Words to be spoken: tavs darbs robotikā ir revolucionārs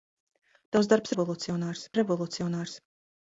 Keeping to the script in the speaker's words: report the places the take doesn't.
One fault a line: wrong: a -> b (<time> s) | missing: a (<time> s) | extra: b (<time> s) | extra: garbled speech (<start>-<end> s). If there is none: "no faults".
wrong: robotikā -> revolucionārs (1.1 s)